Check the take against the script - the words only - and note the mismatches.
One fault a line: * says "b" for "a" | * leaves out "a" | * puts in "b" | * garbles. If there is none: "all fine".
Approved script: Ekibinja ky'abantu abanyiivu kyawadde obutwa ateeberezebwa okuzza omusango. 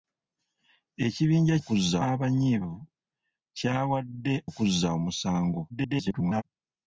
* says "okuzza" for "ky'abantu"
* leaves out "obutwa ateeberezebwa"
* garbles